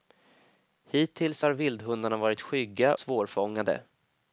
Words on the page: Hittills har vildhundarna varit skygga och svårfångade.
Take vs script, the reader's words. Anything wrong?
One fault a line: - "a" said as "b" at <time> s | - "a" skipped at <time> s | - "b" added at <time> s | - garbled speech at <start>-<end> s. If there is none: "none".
- "och" skipped at 2.9 s